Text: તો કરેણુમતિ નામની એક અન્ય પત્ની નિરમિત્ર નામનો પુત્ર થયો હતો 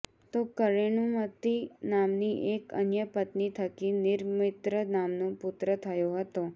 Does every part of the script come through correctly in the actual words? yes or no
no